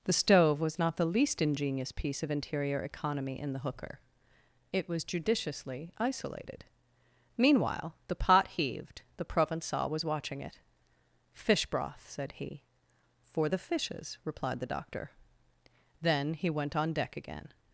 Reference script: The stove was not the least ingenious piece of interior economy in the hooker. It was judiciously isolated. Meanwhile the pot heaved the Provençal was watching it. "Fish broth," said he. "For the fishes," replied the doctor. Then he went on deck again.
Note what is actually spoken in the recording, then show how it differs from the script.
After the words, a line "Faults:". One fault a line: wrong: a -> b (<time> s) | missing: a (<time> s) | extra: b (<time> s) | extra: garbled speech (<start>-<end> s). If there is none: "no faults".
The stove was not the least ingenious piece of interior economy in the hooker. It was judiciously isolated. Meanwhile the pot heaved the Provençal was watching it. "Fish broth," said he. "For the fishes," replied the doctor. Then he went on deck again.
Faults:
no faults